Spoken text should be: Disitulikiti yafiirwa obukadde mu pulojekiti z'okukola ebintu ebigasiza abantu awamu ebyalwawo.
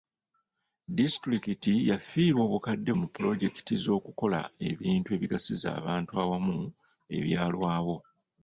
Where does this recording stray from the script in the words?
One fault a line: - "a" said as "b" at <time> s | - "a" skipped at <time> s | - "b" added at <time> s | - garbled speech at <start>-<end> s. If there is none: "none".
none